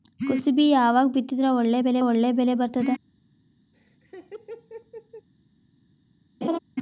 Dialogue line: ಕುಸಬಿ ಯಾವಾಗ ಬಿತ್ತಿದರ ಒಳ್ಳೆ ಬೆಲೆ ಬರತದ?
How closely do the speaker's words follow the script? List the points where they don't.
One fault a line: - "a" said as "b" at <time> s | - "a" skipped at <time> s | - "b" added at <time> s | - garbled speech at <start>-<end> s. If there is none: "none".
- "ಒಳ್ಳೆ ಬೆಲೆ" added at 2.0 s